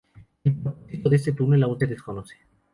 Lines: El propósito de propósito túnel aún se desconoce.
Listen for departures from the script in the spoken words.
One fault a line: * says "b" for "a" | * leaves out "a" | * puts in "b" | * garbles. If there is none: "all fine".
* says "este" for "propósito"